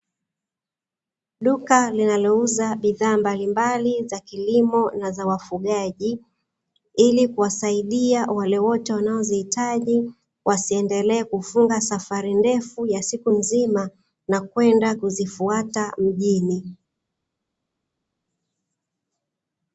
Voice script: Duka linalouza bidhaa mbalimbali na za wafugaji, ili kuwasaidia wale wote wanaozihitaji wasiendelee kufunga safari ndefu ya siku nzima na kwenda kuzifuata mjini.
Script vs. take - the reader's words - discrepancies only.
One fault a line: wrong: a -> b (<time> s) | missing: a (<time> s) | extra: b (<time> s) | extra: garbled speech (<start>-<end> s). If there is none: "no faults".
extra: za kilimo (4.1 s)